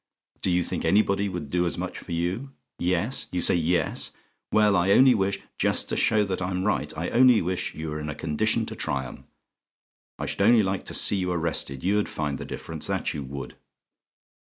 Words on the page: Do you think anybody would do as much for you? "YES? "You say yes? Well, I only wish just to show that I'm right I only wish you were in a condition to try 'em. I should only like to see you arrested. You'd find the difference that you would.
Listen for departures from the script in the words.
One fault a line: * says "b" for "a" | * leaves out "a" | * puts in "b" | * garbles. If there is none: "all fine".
all fine